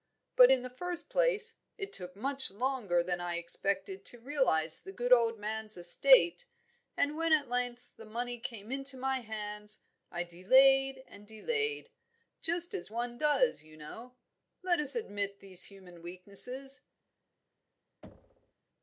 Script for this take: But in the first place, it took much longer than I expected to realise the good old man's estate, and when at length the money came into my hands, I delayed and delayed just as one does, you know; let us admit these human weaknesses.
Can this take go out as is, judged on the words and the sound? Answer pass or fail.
fail